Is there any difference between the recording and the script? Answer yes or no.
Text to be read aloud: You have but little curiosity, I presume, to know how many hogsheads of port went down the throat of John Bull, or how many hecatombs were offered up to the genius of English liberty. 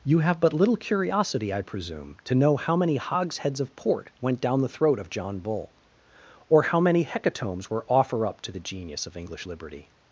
yes